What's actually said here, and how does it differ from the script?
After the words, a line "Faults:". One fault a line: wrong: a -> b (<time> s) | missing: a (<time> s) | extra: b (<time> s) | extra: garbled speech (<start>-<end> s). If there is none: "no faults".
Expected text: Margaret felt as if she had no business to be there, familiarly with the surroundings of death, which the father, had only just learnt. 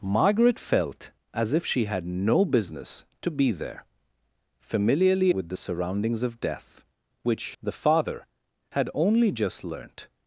Margaret felt as if she had no business to be there, familiarly with the surroundings of death, which the father, had only just learnt.
Faults:
no faults